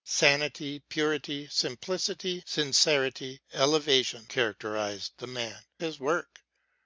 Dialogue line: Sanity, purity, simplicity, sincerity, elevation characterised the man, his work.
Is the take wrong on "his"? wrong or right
right